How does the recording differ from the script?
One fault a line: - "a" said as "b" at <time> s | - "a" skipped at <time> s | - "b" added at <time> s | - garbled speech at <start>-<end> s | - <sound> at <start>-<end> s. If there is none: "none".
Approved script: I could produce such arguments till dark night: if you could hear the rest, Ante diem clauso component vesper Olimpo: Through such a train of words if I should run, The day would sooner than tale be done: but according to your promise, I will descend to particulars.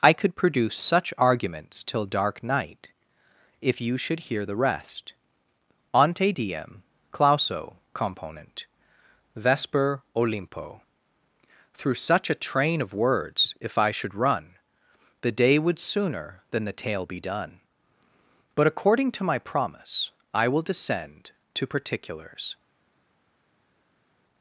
- "could" said as "should" at 4.0 s
- "the" added at 16.6 s
- "your" said as "my" at 19.2 s